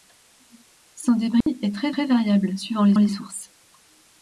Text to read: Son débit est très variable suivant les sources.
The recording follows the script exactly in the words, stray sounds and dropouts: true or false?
false